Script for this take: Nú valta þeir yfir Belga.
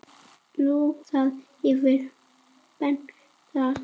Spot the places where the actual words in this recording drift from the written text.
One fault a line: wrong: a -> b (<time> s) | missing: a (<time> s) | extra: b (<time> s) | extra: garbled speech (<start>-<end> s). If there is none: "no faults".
missing: valta (0.8 s)